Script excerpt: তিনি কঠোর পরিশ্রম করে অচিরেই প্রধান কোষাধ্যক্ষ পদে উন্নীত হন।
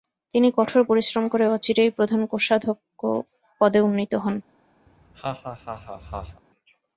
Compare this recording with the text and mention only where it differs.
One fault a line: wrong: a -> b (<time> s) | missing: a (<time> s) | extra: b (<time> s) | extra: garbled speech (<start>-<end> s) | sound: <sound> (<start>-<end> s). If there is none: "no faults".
sound: laugh (4.9-6.4 s)